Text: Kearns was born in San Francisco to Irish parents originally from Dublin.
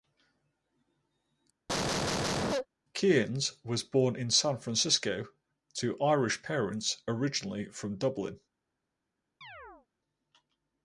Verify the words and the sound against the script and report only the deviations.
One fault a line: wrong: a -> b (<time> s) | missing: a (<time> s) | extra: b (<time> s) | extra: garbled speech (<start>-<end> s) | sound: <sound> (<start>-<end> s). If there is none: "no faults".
sound: cough (1.7-2.7 s)
sound: chirp (9.4-9.9 s)